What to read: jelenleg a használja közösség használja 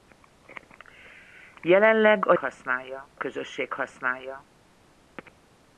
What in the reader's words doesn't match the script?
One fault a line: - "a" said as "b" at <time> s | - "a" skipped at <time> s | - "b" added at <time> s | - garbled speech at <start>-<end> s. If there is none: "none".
none